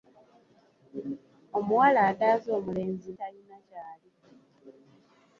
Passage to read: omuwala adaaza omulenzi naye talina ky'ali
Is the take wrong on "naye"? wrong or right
wrong